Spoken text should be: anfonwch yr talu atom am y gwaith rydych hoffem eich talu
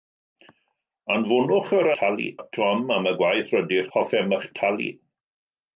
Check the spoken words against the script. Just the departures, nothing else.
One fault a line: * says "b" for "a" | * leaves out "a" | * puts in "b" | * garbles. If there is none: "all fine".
all fine